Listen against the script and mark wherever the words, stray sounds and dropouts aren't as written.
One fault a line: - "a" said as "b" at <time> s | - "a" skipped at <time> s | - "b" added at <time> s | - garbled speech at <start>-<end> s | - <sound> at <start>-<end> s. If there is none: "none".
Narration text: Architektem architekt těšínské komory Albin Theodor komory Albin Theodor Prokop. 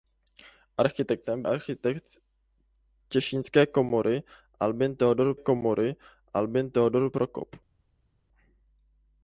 none